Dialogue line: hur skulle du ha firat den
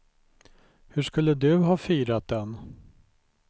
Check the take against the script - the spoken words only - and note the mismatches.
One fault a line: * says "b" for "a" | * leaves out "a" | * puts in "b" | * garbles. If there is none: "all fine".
all fine